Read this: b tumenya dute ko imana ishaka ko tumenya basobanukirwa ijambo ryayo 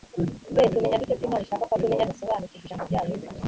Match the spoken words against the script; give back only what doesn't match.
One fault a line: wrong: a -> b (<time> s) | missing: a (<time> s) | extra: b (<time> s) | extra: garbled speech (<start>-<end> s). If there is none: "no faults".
no faults